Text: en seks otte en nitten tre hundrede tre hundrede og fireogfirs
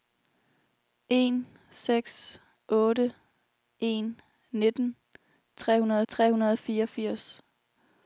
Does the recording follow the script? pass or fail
pass